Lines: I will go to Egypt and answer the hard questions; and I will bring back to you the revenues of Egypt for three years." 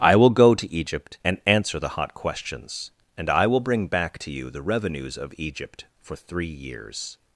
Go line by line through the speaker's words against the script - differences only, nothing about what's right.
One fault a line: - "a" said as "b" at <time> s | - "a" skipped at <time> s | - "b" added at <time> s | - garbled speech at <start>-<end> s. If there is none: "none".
- "hard" said as "hot" at 1.9 s